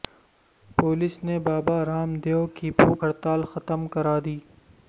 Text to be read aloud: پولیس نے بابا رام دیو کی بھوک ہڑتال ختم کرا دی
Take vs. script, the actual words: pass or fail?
pass